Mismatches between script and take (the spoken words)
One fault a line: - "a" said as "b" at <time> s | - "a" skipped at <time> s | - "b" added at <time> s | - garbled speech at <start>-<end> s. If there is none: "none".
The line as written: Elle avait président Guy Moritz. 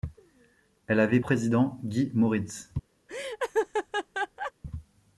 none